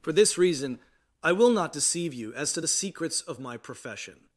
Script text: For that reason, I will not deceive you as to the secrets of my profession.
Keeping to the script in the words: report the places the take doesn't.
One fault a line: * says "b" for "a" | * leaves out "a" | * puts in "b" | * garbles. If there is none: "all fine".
* says "this" for "that"